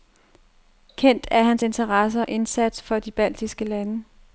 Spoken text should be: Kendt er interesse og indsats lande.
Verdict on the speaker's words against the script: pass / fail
fail